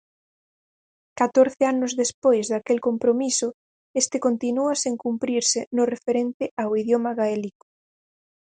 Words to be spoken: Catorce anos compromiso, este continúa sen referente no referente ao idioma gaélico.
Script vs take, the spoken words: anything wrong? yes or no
yes